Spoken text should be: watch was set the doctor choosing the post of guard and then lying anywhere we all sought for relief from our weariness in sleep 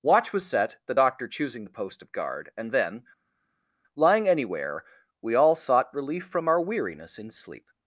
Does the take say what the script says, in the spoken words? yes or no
no